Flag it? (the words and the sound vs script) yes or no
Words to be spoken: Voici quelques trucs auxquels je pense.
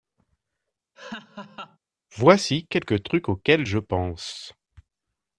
yes